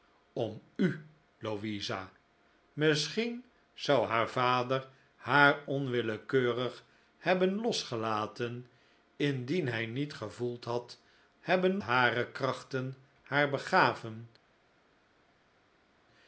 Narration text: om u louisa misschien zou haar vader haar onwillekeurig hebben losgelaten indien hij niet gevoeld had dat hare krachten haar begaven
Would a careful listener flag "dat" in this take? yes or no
yes